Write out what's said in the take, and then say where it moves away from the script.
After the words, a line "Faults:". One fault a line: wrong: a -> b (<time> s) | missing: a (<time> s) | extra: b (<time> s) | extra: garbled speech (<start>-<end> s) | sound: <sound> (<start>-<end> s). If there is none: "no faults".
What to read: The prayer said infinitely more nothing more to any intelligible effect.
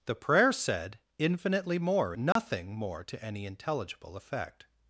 The prayer said infinitely more nothing more to any intelligible effect.
Faults:
sound: dropout (2.3-2.4 s)